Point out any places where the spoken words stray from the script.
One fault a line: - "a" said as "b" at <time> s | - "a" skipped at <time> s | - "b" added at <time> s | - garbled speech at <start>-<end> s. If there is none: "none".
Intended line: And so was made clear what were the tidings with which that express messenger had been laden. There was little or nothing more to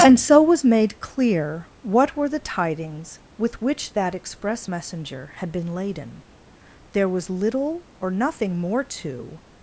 none